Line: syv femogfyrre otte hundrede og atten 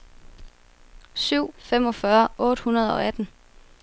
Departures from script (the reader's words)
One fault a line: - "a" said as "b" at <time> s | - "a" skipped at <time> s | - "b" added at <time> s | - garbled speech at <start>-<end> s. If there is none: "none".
none